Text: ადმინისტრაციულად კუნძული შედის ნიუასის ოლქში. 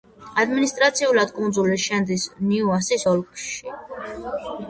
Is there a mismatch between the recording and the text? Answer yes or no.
no